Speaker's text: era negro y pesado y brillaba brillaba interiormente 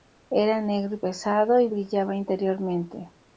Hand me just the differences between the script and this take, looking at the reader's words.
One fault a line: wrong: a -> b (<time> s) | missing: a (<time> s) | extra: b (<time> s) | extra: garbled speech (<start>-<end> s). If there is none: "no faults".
missing: brillaba (2.1 s)